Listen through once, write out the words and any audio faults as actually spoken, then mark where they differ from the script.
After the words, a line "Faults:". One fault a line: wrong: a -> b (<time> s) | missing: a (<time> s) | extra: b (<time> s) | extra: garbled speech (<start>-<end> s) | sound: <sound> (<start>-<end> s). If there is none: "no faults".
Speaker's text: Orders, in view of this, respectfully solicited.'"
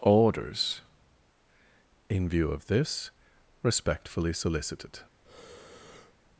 Orders, in view of this, respectfully solicited.'"
Faults:
sound: breath (5.2-6.2 s)